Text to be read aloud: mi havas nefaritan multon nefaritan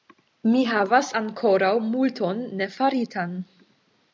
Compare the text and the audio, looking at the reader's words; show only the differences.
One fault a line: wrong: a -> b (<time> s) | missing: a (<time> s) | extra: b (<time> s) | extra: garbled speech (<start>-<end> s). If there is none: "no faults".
wrong: nefaritan -> ankoraŭ (1.2 s)